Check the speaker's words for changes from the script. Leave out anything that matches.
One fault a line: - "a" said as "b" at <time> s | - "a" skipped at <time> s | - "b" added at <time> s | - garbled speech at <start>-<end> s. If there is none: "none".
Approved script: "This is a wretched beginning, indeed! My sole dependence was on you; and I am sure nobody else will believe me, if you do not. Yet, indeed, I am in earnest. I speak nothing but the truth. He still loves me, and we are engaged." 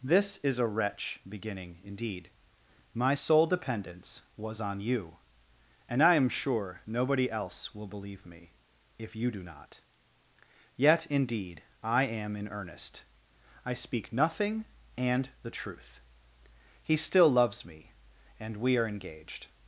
- "wretched" said as "wretch" at 0.7 s
- "but" said as "and" at 15.0 s